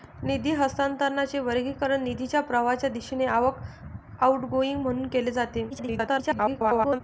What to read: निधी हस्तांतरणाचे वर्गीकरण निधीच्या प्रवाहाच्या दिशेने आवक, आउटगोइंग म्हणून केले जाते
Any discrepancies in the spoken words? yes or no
yes